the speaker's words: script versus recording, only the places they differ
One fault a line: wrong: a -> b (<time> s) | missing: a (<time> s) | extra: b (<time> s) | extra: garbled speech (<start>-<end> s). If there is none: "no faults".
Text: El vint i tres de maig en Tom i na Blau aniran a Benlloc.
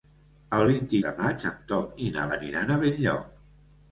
missing: tres (1.0 s)
missing: Blau (2.3 s)